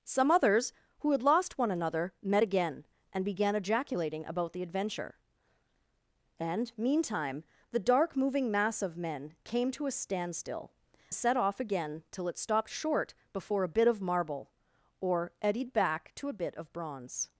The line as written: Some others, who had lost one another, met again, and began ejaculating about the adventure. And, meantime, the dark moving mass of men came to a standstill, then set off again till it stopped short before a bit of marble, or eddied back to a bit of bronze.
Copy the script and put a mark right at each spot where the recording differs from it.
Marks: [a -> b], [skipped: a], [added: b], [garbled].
Some others, who had lost one another, met again, and began ejaculating about the adventure. And, meantime, the dark moving mass of men came to a standstill, [skipped: then] set off again till it stopped short before a bit of marble, or eddied back to a bit of bronze.